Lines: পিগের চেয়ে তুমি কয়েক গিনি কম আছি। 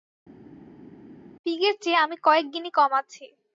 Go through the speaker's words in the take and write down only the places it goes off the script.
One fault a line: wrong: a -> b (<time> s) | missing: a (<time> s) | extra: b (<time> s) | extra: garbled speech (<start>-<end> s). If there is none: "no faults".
wrong: তুমি -> আমি (2.0 s)